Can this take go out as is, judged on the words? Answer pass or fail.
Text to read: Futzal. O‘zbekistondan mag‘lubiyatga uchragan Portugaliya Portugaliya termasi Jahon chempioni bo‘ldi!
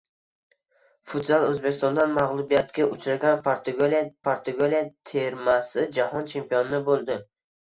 pass